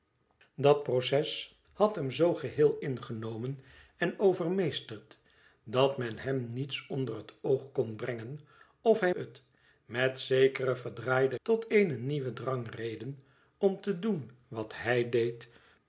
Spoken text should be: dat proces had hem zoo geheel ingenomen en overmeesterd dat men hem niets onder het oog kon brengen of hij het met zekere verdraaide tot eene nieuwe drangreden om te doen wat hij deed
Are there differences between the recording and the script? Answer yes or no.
no